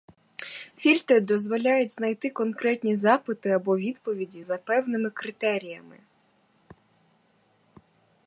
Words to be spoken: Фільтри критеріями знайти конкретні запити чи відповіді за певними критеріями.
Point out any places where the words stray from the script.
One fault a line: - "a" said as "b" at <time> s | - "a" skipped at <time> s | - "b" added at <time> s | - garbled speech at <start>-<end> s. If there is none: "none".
- "критеріями" said as "дозволяють" at 1.2 s
- "чи" said as "або" at 3.5 s